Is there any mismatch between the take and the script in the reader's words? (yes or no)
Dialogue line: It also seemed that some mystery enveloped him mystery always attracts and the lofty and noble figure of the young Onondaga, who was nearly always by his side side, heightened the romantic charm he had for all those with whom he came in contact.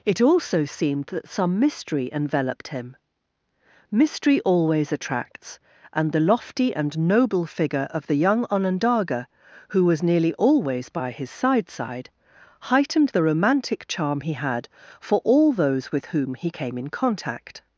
no